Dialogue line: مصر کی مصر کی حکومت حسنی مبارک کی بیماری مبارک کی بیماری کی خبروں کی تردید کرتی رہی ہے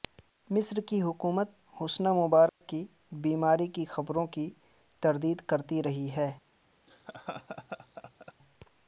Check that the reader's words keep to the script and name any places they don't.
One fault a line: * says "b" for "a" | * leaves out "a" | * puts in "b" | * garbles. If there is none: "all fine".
* leaves out "مصر کی"
* leaves out "مبارک کی بیماری"